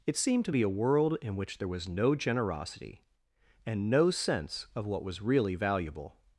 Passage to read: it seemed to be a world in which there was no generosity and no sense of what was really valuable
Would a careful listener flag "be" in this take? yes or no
no